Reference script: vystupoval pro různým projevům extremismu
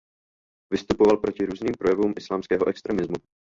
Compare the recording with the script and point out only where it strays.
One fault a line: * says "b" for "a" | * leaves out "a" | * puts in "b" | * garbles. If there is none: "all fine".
* says "proti" for "pro"
* puts in "islámského"